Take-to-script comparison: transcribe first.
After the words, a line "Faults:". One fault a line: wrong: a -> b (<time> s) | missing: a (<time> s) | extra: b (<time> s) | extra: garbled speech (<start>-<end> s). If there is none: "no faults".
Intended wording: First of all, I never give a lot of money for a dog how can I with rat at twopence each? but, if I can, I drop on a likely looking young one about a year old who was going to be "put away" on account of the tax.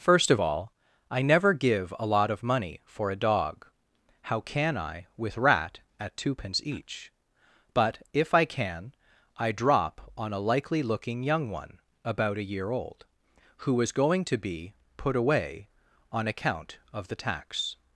First of all, I never give a lot of money for a dog how can I with rat at twopence each? but, if I can, I drop on a likely looking young one about a year old who was going to be "put away" on account of the tax.
Faults:
no faults